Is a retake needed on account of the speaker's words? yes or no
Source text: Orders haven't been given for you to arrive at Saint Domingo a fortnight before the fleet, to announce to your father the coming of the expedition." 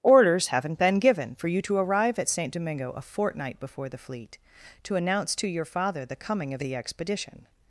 no